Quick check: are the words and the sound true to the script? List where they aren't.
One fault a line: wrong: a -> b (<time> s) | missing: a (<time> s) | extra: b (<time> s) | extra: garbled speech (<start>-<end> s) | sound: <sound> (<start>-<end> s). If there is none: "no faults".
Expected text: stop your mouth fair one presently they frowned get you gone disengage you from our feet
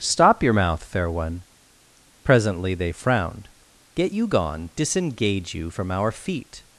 no faults